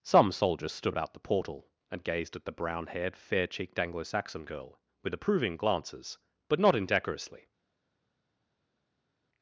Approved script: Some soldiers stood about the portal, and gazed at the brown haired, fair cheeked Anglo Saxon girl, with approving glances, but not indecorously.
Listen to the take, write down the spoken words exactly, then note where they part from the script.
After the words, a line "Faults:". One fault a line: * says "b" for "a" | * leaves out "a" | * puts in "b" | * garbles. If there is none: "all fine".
Some soldiers stood about the portal, and gazed at the brown haired, fair cheeked Anglo Saxon girl, with approving glances, but not indecorously.
Faults:
all fine